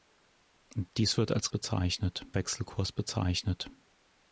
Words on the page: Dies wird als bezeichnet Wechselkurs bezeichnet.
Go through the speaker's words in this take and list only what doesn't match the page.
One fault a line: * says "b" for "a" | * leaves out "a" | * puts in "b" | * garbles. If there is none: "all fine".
all fine